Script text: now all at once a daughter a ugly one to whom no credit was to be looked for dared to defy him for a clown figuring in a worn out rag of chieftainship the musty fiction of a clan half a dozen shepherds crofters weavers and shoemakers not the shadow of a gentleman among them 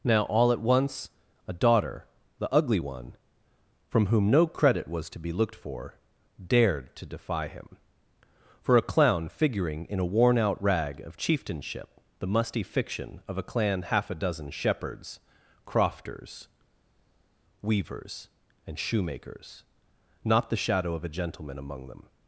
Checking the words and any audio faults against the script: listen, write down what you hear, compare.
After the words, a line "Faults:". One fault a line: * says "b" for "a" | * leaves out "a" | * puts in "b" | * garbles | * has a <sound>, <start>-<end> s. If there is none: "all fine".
now all at once a daughter the ugly one from whom no credit was to be looked for dared to defy him for a clown figuring in a worn out rag of chieftainship the musty fiction of a clan half a dozen shepherds crofters weavers and shoemakers not the shadow of a gentleman among them
Faults:
* says "the" for "a"
* says "from" for "to"